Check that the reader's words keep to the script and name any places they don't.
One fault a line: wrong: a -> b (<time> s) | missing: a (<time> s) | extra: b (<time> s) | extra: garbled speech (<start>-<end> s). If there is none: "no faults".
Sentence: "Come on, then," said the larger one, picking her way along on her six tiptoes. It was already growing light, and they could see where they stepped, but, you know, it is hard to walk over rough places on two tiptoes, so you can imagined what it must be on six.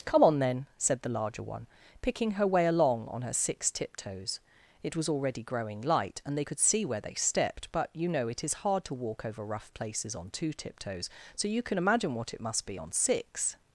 wrong: imagined -> imagine (11.8 s)